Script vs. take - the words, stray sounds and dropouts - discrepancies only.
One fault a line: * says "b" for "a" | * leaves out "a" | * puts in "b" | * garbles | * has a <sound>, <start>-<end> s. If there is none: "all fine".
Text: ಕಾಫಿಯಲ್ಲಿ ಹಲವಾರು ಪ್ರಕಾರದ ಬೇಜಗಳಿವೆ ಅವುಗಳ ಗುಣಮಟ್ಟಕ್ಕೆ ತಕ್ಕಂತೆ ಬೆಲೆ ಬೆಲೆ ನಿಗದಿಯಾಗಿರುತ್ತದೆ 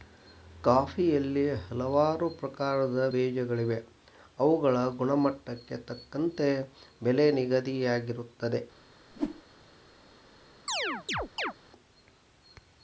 * leaves out "ಬೆಲೆ"
* has a whoosh, 9.1-9.4 s
* has a chirp, 10.7-11.5 s